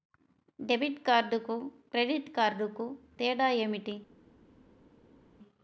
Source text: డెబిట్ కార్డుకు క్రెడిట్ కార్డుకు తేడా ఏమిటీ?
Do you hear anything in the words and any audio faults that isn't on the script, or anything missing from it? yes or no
no